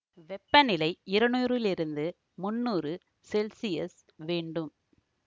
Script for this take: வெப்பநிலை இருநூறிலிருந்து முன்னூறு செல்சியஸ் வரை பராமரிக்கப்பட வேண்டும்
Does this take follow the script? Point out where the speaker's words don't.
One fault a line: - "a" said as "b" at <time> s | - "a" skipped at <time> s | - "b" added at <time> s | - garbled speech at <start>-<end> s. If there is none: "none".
- "வரை பராமரிக்கப்பட" skipped at 4.0 s